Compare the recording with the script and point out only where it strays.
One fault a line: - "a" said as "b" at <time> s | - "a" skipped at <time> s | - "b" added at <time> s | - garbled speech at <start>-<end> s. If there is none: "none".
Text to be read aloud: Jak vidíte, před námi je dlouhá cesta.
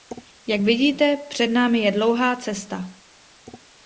none